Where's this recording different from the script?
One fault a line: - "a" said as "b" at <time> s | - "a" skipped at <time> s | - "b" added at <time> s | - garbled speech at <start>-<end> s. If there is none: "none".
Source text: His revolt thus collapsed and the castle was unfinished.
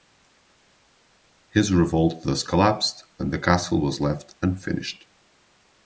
- "left" added at 4.0 s